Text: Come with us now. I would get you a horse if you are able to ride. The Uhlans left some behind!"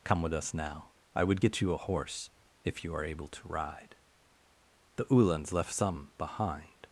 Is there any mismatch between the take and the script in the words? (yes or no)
no